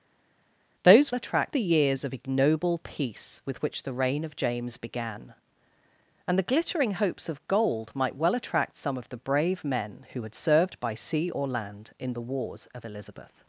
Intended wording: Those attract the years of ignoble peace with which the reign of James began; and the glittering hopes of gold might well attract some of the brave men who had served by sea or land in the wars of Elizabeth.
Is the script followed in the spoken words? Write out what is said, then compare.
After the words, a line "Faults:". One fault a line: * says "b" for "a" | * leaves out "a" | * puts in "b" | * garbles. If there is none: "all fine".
Those attract the years of ignoble peace with which the reign of James began; and the glittering hopes of gold might well attract some of the brave men who had served by sea or land in the wars of Elizabeth.
Faults:
all fine